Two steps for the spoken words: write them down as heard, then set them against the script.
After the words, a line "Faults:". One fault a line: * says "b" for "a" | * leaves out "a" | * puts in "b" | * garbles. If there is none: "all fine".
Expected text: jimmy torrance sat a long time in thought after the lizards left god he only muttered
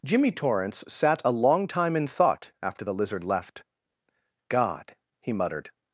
jimmy torrance sat a long time in thought after the lizard left god he muttered
Faults:
* says "lizard" for "lizards"
* leaves out "only"